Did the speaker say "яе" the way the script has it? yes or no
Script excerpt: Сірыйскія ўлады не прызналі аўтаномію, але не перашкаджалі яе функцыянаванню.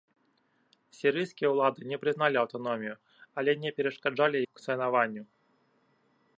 no